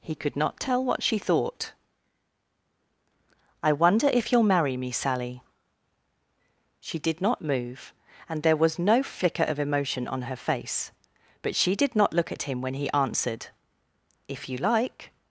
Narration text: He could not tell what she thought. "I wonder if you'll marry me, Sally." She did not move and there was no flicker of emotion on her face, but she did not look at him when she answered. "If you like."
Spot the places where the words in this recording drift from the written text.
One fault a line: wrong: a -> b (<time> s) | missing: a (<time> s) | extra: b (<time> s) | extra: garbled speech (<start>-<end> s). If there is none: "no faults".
wrong: she -> he (12.8 s)